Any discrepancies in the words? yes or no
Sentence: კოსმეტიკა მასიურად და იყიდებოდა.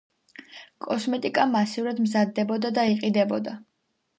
yes